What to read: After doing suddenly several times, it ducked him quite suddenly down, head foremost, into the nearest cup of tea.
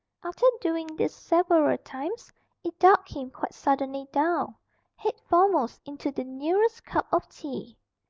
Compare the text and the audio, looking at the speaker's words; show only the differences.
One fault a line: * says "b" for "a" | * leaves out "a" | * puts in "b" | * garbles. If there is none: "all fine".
* says "this" for "suddenly"